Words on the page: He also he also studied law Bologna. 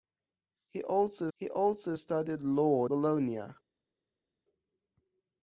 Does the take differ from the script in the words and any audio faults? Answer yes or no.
no